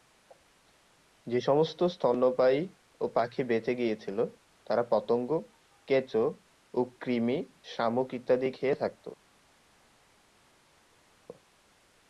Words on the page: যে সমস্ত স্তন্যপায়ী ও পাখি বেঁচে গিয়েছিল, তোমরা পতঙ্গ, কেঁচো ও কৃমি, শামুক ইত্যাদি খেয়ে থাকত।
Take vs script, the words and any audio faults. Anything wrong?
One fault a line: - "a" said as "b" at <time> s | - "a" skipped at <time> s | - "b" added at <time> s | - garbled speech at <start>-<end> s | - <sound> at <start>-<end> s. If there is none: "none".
- "তোমরা" said as "তারা" at 4.7 s